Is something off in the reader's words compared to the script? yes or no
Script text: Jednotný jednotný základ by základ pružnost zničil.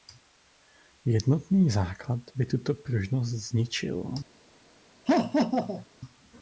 yes